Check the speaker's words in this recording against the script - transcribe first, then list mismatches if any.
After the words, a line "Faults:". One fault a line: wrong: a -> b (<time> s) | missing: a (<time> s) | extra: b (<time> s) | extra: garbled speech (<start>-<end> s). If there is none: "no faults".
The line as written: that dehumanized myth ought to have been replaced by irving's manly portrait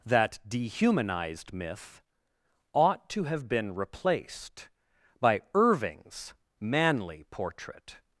that dehumanized myth ought to have been replaced by irving's manly portrait
Faults:
no faults